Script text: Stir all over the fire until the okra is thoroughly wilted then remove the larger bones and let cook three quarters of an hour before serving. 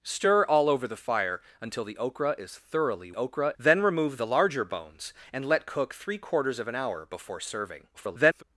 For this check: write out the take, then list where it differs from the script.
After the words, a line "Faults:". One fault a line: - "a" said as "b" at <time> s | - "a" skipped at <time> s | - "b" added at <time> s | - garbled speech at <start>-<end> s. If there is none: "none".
Stir all over the fire until the okra is thoroughly okra then remove the larger bones and let cook three quarters of an hour before serving. [garbled]
Faults:
- "wilted" said as "okra" at 3.1 s
- garbled speech at 7.9-8.4 s